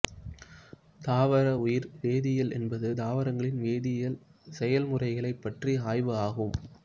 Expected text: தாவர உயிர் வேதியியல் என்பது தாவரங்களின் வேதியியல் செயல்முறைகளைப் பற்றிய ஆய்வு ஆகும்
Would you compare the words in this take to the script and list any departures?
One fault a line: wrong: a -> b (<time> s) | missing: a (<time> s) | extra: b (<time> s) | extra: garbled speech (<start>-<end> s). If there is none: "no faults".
no faults